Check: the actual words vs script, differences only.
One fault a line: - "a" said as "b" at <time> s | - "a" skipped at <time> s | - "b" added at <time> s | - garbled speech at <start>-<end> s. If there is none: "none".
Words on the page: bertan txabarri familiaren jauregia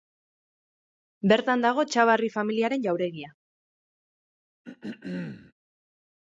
- "dago" added at 1.7 s